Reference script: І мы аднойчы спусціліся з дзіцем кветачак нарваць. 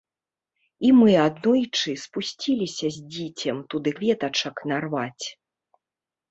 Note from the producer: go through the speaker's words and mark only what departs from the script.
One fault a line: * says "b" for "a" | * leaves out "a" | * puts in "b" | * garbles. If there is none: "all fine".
* puts in "туды"